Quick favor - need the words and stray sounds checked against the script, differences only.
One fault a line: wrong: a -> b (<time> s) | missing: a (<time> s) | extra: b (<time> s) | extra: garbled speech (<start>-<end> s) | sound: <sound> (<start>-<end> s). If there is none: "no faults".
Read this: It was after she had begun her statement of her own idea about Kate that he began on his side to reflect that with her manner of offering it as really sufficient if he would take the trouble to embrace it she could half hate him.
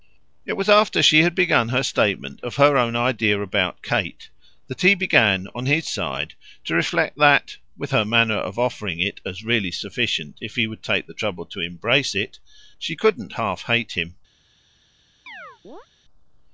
wrong: could -> couldn't (12.9 s)
sound: chirp (15.3-15.9 s)